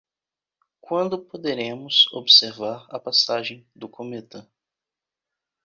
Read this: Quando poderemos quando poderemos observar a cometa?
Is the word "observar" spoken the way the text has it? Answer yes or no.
no